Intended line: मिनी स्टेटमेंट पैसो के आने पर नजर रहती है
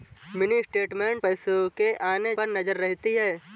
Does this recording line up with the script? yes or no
yes